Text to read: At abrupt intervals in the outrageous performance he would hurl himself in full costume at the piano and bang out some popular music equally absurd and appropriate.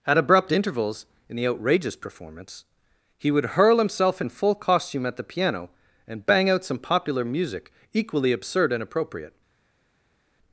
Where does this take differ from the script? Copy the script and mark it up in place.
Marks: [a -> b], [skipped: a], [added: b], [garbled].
At abrupt intervals in the outrageous performance he would hurl himself in full costume at the piano and bang out some popular music equally absurd and appropriate.